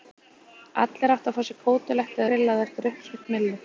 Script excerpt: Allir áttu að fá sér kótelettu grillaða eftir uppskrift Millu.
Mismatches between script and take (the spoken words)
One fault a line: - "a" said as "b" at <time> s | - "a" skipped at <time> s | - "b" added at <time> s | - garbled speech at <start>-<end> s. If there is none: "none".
none